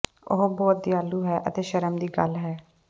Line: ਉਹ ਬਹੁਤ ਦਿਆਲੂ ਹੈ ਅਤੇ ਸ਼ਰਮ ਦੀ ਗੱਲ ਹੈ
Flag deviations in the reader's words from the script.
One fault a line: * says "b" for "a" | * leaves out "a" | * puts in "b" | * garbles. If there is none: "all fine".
all fine